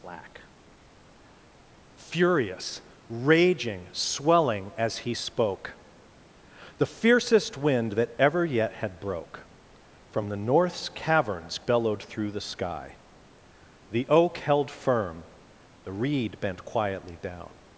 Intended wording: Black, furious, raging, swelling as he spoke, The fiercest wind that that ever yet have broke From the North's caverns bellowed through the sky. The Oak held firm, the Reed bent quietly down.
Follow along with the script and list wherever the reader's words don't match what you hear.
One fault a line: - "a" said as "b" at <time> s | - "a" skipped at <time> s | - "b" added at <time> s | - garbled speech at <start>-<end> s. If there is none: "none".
- "that" skipped at 8.1 s
- "have" said as "had" at 8.7 s